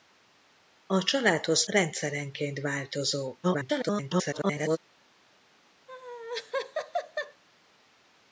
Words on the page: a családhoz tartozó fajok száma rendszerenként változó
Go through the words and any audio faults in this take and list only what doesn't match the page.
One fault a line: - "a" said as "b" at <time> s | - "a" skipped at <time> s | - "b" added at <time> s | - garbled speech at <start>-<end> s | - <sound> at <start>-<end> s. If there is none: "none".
- "tartozó fajok száma" skipped at 1.6 s
- garbled speech at 3.4-4.8 s
- laugh at 5.9-7.4 s